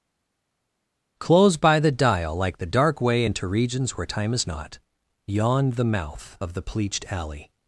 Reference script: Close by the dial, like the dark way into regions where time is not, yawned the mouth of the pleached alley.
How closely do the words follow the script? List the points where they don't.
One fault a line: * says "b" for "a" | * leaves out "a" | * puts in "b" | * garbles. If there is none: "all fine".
all fine